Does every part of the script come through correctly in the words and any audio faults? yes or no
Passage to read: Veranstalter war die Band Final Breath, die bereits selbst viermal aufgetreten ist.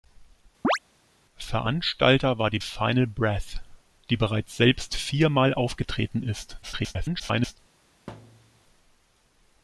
no